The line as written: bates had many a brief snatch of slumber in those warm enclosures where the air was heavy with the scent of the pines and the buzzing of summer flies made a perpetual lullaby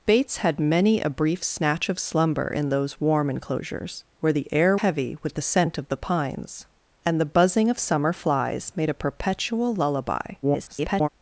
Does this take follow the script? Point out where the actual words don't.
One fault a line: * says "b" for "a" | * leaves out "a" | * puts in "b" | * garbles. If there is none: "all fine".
* leaves out "was"
* garbles